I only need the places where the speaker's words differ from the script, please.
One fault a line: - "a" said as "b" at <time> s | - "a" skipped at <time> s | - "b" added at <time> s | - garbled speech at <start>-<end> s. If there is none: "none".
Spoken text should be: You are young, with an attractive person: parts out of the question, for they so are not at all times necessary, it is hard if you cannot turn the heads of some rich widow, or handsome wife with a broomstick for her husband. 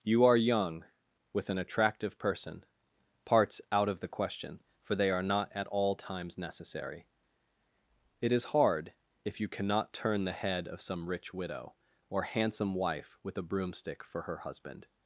- "so" skipped at 5.1 s
- "heads" said as "head" at 10.4 s